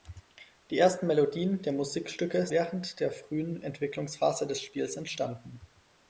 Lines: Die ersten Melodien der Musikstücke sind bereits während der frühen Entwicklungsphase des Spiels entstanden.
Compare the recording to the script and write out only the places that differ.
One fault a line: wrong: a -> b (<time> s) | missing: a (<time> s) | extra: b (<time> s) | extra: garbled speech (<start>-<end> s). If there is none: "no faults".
missing: sind bereits (2.5 s)